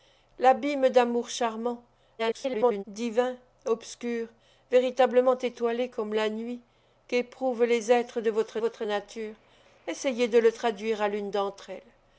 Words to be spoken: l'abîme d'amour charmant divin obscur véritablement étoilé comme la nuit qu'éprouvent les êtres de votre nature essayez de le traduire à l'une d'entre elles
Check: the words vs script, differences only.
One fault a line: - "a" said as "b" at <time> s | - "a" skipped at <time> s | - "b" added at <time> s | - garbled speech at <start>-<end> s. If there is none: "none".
- garbled speech at 2.2-2.8 s
- "votre" added at 8.6 s